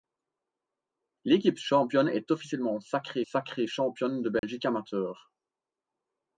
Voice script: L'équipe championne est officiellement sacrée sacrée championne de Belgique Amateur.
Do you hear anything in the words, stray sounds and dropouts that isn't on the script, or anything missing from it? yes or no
yes